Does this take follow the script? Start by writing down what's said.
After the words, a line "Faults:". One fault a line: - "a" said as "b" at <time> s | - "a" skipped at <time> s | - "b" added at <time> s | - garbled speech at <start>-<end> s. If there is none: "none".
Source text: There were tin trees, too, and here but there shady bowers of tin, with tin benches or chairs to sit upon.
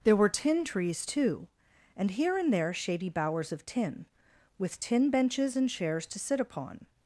There were tin trees, too, and here and there shady bowers of tin, with tin benches and chairs to sit upon.
Faults:
- "but" said as "and" at 2.4 s
- "or" said as "and" at 5.6 s